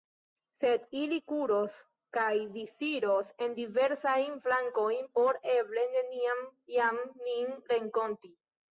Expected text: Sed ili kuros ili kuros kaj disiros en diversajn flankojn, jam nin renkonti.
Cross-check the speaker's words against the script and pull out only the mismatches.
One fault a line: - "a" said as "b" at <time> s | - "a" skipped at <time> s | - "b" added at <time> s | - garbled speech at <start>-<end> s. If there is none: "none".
- "ili kuros" skipped at 1.8 s
- "por eble neniam" added at 5.2 s